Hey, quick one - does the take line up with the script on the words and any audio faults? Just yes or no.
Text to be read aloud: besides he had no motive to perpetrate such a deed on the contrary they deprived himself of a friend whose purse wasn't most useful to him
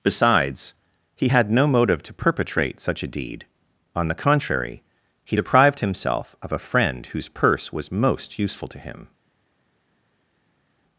no